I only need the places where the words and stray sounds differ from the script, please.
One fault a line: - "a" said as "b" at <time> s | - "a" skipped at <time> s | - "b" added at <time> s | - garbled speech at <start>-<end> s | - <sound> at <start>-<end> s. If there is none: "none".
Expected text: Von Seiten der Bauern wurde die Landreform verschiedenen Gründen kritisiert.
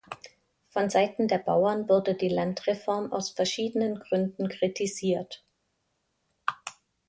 - "aus" added at 3.1 s